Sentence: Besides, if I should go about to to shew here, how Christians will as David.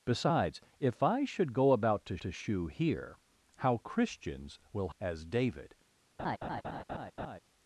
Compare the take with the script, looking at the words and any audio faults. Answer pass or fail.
fail